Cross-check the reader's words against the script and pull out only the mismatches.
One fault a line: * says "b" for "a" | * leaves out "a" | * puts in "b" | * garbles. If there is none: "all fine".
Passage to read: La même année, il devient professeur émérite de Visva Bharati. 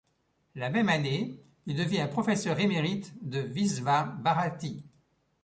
all fine